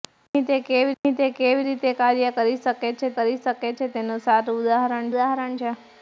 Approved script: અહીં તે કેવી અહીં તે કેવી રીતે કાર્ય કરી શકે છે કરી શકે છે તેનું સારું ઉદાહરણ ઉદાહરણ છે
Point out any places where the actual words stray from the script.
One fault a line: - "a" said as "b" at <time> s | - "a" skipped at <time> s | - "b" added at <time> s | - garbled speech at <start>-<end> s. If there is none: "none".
none